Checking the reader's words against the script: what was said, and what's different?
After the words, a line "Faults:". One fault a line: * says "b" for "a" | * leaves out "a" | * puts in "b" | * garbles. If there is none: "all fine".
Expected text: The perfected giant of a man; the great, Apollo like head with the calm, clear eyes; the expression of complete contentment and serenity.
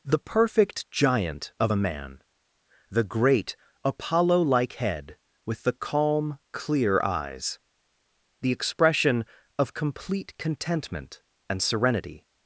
The perfect giant of a man; the great, Apollo like head with the calm, clear eyes; the expression of complete contentment and serenity.
Faults:
* says "perfect" for "perfected"